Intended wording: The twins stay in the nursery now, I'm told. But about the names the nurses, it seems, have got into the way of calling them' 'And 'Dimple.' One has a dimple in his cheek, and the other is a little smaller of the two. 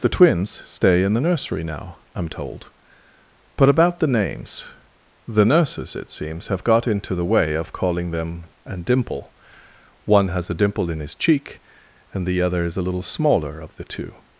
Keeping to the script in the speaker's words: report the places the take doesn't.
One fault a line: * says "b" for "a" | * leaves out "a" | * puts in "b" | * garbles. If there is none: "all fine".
all fine